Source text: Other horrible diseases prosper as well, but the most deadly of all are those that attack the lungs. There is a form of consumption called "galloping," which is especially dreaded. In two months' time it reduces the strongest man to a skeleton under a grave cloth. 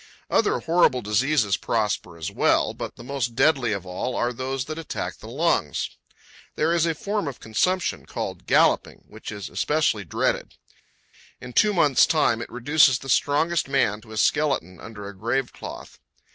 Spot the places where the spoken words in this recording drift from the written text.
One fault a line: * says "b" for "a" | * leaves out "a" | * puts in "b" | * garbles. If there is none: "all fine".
all fine